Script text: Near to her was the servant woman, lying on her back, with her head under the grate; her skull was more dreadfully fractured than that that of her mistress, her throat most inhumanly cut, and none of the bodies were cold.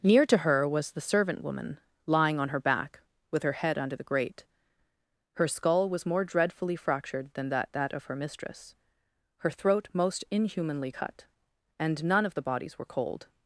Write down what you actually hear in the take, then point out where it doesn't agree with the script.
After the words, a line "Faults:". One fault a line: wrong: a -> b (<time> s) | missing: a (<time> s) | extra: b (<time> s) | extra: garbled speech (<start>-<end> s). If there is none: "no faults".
Near to her was the servant woman, lying on her back, with her head under the grate; her skull was more dreadfully fractured than that that of her mistress, her throat most inhumanly cut, and none of the bodies were cold.
Faults:
no faults